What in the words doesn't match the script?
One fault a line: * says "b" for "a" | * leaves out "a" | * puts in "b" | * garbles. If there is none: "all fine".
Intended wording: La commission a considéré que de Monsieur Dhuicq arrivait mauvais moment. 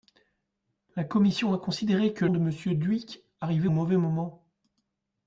all fine